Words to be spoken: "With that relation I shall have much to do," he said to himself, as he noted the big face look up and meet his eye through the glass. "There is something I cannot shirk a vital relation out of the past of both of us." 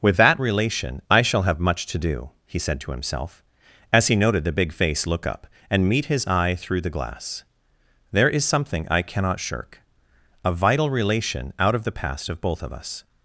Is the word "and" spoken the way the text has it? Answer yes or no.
yes